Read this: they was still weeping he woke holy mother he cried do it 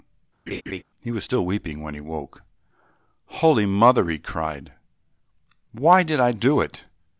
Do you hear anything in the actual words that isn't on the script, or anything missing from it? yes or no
yes